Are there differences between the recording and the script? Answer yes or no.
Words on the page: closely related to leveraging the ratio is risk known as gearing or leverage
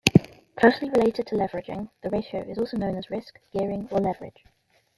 yes